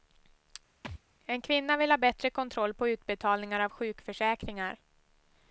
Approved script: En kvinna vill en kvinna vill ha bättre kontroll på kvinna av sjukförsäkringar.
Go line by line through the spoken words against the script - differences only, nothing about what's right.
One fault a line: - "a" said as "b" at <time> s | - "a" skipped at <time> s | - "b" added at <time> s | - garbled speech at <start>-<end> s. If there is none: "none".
- "en kvinna vill" skipped at 1.9 s
- "kvinna" said as "utbetalningar" at 2.9 s